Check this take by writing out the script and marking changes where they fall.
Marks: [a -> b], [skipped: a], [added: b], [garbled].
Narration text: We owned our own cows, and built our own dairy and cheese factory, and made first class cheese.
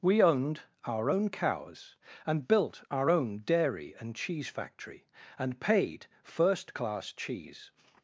We owned our own cows, and built our own dairy and cheese factory, and [made -> paid] first class cheese.